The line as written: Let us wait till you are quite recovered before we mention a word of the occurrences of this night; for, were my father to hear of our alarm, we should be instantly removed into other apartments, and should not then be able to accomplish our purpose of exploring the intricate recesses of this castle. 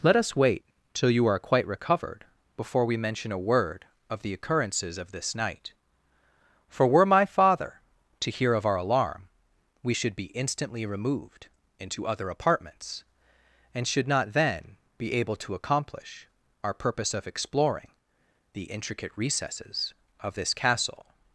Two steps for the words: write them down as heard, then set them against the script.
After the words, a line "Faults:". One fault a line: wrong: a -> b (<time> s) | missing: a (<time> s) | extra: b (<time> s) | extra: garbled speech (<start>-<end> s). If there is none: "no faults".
Let us wait till you are quite recovered before we mention a word of the occurrences of this night; for, were my father to hear of our alarm, we should be instantly removed into other apartments, and should not then be able to accomplish our purpose of exploring the intricate recesses of this castle.
Faults:
no faults